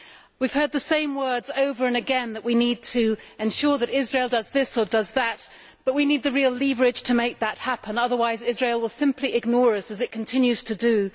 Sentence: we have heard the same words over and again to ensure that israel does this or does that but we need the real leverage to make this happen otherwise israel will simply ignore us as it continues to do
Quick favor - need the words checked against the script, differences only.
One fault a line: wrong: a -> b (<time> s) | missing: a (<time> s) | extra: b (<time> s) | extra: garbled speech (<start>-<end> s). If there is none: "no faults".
extra: that we need (2.3 s)
wrong: this -> that (7.4 s)